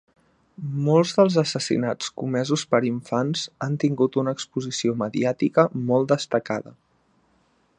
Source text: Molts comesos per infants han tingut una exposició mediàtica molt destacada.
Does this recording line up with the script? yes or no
no